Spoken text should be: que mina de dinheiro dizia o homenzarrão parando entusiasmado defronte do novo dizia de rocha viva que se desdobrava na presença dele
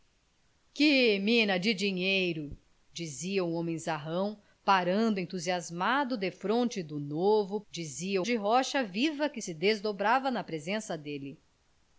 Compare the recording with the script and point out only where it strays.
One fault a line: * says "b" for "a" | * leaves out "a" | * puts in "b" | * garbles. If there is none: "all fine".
all fine